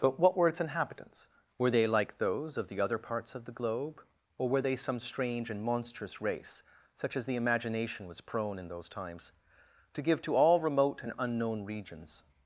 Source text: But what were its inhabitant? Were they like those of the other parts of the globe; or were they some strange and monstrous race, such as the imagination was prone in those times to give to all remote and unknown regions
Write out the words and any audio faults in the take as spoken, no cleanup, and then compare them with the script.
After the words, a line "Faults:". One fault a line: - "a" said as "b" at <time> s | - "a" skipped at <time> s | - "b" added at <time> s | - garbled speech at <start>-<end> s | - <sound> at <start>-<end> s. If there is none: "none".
But what were its inhabitants? Were they like those of the other parts of the globe; or were they some strange and monstrous race, such as the imagination was prone in those times to give to all remote and unknown regions
Faults:
- "inhabitant" said as "inhabitants" at 0.6 s